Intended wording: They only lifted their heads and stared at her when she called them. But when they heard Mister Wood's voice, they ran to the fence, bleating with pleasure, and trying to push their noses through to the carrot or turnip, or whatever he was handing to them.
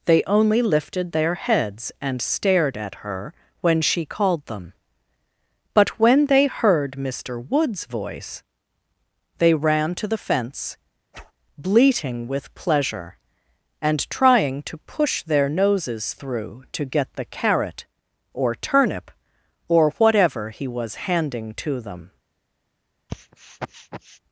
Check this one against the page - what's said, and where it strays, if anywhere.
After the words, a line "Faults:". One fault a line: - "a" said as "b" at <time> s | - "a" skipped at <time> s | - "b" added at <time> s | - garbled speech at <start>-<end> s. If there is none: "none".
They only lifted their heads and stared at her when she called them. But when they heard Mister Wood's voice, they ran to the fence, bleating with pleasure, and trying to push their noses through to get the carrot or turnip, or whatever he was handing to them.
Faults:
- "get" added at 16.8 s